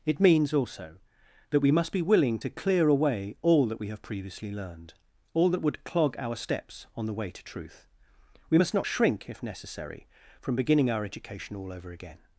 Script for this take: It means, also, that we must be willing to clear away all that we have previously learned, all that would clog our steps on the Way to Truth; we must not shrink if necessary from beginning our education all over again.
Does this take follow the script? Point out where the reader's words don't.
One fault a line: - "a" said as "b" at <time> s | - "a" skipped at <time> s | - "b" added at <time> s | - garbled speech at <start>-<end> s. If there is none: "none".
none